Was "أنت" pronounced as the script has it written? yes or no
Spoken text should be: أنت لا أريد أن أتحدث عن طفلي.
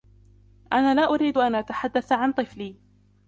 no